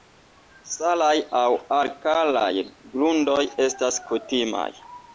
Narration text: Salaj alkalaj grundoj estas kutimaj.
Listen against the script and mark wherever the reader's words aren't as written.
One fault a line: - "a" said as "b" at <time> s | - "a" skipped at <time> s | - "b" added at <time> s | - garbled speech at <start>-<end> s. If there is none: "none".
- "aŭ" added at 1.4 s